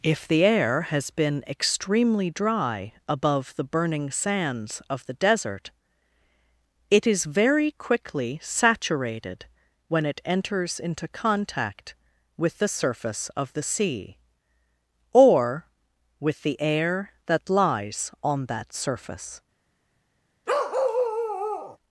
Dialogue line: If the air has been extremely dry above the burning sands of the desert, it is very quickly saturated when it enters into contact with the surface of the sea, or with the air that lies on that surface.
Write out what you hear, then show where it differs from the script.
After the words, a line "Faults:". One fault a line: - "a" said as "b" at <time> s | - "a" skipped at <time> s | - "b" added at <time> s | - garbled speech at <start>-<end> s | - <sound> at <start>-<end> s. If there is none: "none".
If the air has been extremely dry above the burning sands of the desert, it is very quickly saturated when it enters into contact with the surface of the sea, or with the air that lies on that surface.
Faults:
- bark at 20.5-21.8 s